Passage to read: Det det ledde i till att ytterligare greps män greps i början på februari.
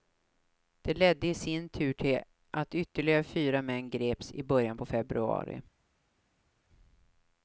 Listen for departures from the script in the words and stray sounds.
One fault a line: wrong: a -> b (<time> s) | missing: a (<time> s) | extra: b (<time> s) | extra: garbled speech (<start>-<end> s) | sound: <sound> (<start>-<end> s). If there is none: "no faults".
missing: det (0.9 s)
extra: sin tur (1.3 s)
wrong: greps -> fyra (3.2 s)